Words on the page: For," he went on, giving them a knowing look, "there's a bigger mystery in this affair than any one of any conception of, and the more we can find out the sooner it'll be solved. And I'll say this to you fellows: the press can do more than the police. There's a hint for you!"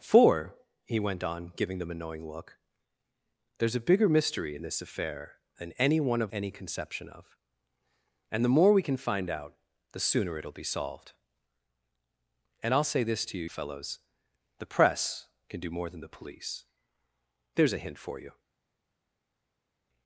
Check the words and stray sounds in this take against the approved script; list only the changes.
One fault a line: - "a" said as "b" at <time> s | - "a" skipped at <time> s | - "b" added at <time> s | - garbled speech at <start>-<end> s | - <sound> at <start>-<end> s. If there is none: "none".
none